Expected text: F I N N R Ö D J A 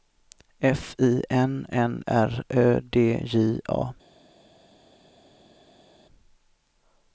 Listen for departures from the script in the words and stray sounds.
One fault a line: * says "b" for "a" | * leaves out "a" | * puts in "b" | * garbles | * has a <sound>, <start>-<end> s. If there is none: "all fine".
all fine